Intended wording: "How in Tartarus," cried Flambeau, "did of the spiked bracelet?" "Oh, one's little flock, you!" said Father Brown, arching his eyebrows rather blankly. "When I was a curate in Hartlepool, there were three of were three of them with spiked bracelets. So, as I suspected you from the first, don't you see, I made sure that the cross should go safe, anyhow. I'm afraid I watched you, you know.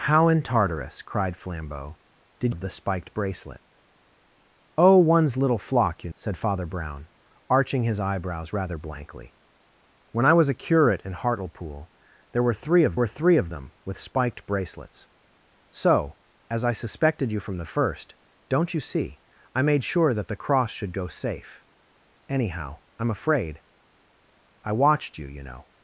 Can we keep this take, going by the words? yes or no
yes